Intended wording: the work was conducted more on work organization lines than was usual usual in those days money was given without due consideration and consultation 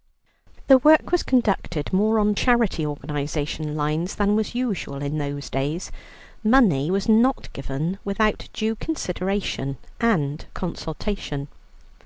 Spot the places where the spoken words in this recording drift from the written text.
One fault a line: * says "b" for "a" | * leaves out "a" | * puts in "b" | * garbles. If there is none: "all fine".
* says "charity" for "work"
* leaves out "usual"
* puts in "not"